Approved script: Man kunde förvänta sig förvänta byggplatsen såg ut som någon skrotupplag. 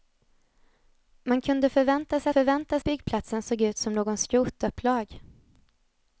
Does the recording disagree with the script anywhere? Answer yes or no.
no